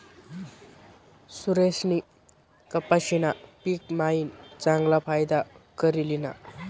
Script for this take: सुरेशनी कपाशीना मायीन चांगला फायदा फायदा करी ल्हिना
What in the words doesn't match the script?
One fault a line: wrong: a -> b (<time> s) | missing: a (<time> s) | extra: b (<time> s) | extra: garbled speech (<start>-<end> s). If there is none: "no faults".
extra: पिक (3.6 s)
missing: फायदा (5.4 s)